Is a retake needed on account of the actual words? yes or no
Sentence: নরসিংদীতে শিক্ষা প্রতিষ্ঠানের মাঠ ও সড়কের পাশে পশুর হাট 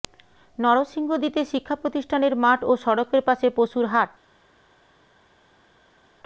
no